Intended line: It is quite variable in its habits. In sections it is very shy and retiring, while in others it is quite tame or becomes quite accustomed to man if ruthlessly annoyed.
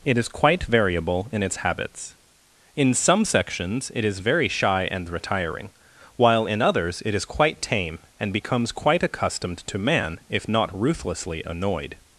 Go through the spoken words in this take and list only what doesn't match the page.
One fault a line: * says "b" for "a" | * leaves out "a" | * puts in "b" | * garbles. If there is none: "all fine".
* puts in "some"
* says "and" for "or"
* puts in "not"